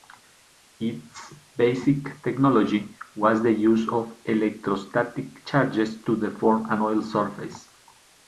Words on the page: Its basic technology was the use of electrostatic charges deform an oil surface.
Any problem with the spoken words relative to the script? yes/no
yes